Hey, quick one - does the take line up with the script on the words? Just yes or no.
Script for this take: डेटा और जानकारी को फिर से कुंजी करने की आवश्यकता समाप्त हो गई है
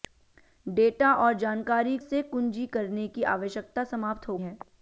no